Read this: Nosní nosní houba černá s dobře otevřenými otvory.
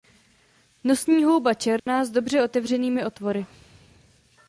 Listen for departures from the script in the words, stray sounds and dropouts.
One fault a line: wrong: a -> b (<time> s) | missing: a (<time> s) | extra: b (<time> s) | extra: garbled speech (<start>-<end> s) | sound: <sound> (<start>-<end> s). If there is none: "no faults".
missing: nosní (1.2 s)
sound: dropout (1.8-1.9 s)